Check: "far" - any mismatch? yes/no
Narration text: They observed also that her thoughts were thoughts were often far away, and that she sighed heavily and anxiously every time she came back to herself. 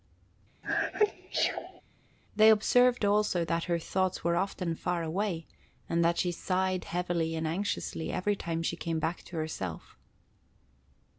no